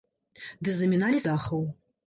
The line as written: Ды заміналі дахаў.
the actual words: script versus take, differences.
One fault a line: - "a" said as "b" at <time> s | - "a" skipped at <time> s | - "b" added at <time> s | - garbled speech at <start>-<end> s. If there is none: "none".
none